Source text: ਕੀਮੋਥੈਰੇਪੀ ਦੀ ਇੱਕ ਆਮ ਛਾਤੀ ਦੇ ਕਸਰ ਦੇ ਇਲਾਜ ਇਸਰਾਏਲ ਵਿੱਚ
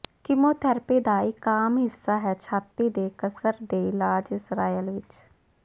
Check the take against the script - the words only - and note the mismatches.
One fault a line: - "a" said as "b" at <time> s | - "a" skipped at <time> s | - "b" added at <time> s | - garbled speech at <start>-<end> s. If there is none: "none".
- "ਦੀ" said as "ਦਾ" at 1.0 s
- "ਹਿੱਸਾ ਹੈ" added at 1.8 s